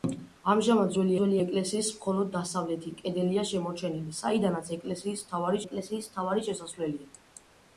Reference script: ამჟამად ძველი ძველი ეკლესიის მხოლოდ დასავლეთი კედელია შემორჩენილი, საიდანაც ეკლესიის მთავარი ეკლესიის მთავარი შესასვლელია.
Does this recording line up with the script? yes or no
yes